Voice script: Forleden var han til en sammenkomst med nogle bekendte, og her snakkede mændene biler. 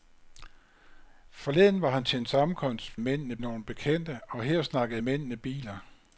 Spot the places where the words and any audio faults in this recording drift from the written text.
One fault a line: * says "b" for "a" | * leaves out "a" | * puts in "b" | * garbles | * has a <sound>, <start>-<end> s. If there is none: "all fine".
* says "mændene" for "med"